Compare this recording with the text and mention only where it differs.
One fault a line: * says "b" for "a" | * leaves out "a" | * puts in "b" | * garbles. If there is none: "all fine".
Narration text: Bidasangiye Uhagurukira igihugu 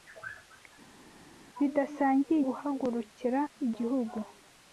all fine